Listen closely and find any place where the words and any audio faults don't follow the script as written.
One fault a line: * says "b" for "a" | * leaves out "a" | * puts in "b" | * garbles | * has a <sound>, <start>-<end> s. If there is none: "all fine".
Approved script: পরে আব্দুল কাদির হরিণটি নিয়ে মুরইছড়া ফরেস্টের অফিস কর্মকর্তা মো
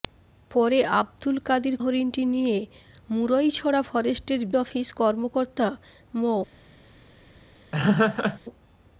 * has a laugh, 7.7-8.4 s